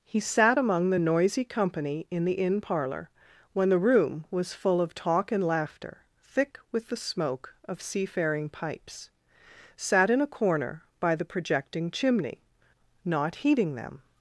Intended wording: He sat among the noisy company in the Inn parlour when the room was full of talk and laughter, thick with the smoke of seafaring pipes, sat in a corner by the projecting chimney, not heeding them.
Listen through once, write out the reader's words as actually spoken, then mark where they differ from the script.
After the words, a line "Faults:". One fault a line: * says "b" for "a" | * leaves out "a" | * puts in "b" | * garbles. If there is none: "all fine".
He sat among the noisy company in the Inn parlour when the room was full of talk and laughter, thick with the smoke of seafaring pipes, sat in a corner by the projecting chimney, not heeding them.
Faults:
all fine